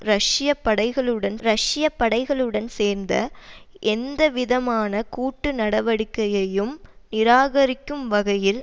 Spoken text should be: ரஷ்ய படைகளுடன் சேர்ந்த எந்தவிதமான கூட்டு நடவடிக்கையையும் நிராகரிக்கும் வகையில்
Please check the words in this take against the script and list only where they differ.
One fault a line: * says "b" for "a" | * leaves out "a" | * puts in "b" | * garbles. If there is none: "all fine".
* puts in "ரஷ்ய படைகளுடன்"